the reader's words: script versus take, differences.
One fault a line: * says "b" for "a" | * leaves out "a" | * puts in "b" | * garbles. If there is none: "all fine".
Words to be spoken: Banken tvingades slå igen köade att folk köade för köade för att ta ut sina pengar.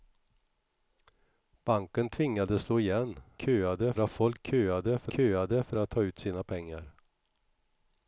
all fine